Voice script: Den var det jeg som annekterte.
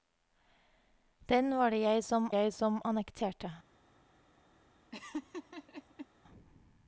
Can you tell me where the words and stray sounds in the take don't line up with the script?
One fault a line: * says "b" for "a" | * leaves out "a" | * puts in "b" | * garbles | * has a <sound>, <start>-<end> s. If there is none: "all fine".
* puts in "jeg som"
* has a laugh, 4.9-6.1 s